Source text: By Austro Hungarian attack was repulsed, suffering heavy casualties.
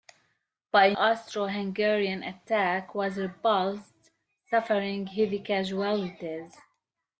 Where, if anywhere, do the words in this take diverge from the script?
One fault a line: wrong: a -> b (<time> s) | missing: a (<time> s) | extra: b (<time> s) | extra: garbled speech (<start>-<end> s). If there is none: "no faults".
no faults